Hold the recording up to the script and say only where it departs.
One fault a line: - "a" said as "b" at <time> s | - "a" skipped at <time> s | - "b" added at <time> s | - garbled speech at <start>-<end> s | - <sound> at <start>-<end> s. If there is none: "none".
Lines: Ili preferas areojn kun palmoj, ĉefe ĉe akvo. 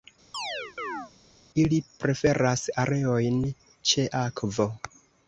- chirp at 0.3-1.1 s
- "kun palmoj ĉefe" skipped at 3.4 s